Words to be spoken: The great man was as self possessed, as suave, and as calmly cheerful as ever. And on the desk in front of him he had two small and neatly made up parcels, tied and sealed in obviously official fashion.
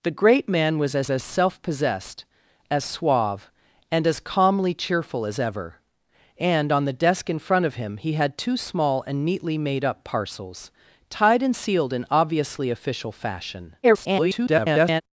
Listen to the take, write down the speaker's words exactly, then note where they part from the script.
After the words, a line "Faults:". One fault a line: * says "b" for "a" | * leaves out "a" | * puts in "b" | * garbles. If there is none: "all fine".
The great man was as as self possessed, as suave, and as calmly cheerful as ever. And on the desk in front of him he had two small and neatly made up parcels, tied and sealed in obviously official fashion. [garbled]
Faults:
* puts in "as"
* garbles